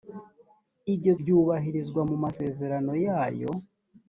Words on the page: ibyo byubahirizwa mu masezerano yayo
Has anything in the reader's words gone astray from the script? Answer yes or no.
no